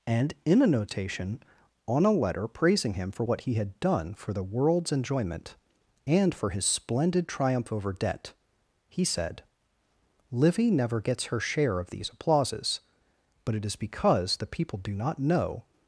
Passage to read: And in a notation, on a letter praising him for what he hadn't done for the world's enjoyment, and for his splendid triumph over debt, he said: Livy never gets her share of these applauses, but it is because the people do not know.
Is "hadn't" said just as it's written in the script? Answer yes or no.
no